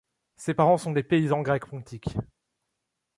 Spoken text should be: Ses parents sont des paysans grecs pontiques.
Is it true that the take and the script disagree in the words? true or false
false